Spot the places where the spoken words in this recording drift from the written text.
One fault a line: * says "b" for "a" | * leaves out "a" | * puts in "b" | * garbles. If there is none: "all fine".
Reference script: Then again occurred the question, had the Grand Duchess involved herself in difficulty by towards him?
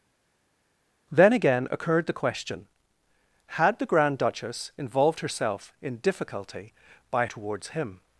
all fine